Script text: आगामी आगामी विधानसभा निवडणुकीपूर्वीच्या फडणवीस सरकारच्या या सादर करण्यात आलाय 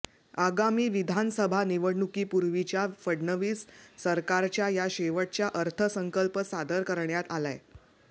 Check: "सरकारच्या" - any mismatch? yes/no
no